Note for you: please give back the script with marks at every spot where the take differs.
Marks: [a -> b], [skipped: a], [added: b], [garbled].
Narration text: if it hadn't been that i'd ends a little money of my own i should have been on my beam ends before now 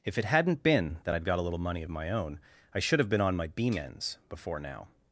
if it hadn't been that i'd [ends -> got] a little money of my own i should have been on my beam ends before now